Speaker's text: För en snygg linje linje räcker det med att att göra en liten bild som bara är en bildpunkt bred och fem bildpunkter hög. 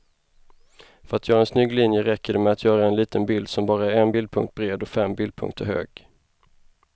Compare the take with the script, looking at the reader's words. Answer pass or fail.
fail